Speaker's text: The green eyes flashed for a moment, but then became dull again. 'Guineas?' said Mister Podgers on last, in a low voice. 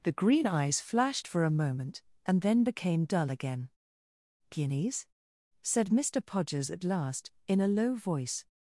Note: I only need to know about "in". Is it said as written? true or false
true